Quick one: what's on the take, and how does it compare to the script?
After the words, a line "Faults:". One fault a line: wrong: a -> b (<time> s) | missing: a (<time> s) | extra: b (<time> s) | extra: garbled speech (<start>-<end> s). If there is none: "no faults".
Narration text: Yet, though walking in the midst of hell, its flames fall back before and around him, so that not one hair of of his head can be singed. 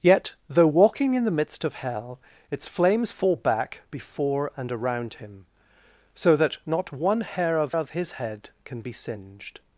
Yet, though walking in the midst of hell, its flames fall back before and around him, so that not one hair of of his head can be singed.
Faults:
no faults